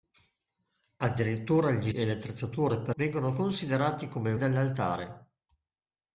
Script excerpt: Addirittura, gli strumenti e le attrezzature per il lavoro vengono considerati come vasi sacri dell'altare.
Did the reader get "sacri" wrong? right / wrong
wrong